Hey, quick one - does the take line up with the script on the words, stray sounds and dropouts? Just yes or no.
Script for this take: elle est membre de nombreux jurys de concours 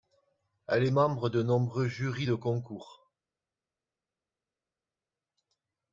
yes